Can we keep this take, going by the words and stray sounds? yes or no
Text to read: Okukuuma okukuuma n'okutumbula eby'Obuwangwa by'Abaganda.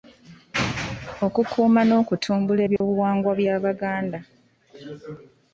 no